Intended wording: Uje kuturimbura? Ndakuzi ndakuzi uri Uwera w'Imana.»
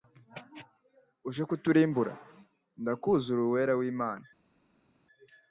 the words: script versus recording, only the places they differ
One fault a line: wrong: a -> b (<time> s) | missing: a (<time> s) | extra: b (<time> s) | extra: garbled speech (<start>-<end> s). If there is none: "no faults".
missing: ndakuzi (3.3 s)